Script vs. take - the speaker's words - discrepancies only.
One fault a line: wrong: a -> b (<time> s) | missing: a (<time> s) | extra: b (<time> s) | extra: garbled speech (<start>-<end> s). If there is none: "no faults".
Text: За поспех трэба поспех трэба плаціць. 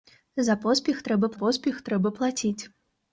no faults